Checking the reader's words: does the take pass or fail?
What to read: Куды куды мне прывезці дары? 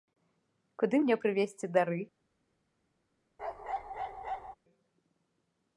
fail